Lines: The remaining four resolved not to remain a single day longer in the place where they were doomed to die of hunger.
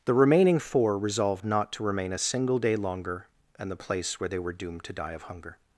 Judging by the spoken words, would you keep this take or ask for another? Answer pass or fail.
pass